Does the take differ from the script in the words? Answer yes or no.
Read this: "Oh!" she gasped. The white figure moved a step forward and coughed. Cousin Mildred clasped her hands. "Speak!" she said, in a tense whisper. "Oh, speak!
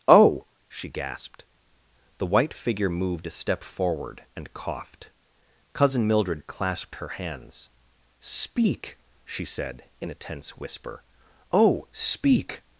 no